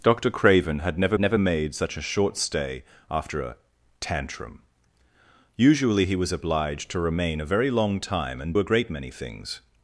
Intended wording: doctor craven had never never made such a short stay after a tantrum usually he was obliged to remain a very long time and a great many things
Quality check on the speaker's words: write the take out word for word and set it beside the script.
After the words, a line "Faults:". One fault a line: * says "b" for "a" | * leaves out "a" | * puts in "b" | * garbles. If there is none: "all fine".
doctor craven had never never made such a short stay after a tantrum usually he was obliged to remain a very long time and a great many things
Faults:
all fine